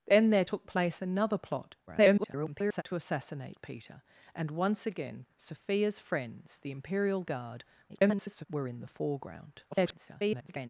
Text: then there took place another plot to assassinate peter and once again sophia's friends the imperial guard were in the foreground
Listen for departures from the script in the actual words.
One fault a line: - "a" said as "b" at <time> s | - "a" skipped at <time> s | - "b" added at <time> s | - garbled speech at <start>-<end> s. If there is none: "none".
- garbled speech at 1.9-2.8 s
- garbled speech at 7.9-8.5 s
- garbled speech at 9.7-10.7 s